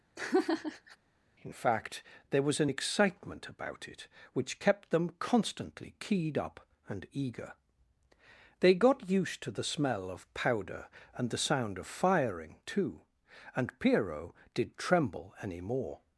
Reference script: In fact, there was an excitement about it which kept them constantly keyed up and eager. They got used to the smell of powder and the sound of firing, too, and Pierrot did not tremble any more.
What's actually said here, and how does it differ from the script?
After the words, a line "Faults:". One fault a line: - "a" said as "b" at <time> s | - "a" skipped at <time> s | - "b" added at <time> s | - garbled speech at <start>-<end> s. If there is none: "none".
In fact, there was an excitement about it which kept them constantly keyed up and eager. They got used to the smell of powder and the sound of firing, too, and Pierrot did tremble any more.
Faults:
- "not" skipped at 14.8 s